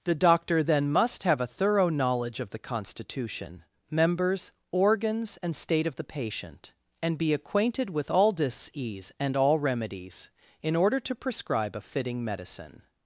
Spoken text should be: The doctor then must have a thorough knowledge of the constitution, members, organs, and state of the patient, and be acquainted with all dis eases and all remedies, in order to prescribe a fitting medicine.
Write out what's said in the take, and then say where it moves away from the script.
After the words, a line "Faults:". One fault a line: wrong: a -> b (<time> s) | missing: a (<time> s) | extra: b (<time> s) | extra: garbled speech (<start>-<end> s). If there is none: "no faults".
The doctor then must have a thorough knowledge of the constitution, members, organs, and state of the patient, and be acquainted with all dis ease and all remedies, in order to prescribe a fitting medicine.
Faults:
wrong: eases -> ease (8.7 s)